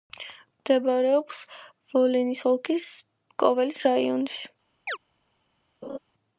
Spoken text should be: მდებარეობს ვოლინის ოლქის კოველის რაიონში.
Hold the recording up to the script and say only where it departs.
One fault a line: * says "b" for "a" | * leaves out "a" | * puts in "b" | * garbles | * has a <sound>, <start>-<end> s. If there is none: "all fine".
* has a chirp, 4.9-5.0 s
* has a laugh, 5.8-6.0 s